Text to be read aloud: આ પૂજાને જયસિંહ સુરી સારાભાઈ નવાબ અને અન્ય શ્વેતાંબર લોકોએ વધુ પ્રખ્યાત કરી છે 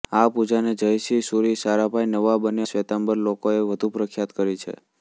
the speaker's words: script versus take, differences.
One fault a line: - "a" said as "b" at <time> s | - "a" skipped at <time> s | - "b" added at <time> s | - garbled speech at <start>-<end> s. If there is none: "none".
- "અન્ય" skipped at 2.6 s